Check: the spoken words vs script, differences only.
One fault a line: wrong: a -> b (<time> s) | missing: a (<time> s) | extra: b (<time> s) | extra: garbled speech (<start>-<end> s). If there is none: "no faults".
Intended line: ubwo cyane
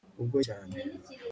no faults